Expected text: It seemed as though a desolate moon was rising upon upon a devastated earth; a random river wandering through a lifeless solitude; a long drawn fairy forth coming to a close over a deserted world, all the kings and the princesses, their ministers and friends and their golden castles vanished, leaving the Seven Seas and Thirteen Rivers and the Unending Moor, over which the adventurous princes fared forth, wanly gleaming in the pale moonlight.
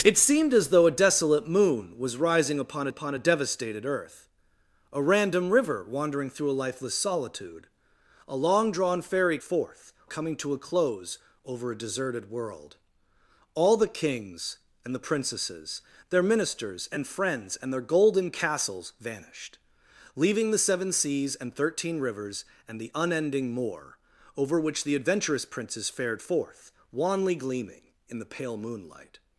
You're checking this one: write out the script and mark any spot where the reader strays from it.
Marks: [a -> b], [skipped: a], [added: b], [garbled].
It seemed as though a desolate moon was rising upon upon a devastated earth; a random river wandering through a lifeless solitude; a long drawn fairy forth coming to a close over a deserted world, all the kings and the princesses, their ministers and friends and their golden castles vanished, leaving the Seven Seas and Thirteen Rivers and the Unending Moor, over which the adventurous princes fared forth, wanly gleaming in the pale moonlight.